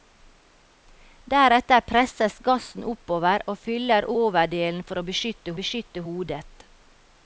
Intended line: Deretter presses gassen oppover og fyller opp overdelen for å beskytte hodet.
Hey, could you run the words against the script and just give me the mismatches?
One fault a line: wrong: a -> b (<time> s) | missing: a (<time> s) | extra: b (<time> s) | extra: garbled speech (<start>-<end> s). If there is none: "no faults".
missing: opp (4.1 s)
extra: beskytte (5.6 s)